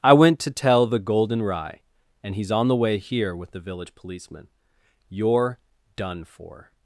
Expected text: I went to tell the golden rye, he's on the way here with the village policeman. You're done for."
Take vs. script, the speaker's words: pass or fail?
fail